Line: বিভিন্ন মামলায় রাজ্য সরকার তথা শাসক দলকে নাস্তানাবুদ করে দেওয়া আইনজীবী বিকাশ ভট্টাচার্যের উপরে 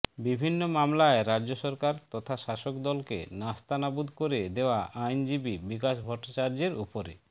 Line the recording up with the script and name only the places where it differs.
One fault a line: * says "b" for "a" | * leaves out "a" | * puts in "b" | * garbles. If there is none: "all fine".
all fine